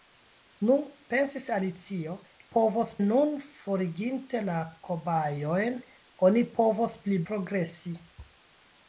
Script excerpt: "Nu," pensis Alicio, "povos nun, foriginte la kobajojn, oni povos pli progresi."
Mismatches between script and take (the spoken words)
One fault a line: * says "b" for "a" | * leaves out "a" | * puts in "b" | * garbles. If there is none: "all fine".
all fine